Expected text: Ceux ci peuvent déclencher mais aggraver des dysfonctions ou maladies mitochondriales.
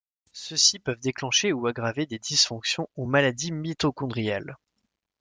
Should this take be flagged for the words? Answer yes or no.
yes